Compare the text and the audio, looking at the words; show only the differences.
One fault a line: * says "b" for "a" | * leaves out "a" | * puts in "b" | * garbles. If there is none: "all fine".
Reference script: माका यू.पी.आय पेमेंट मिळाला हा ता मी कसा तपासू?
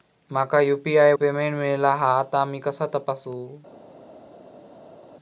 all fine